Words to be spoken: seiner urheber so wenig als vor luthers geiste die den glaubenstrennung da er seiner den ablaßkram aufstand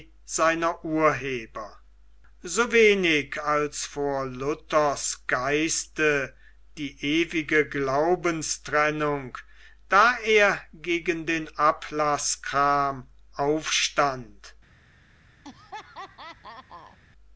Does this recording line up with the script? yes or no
no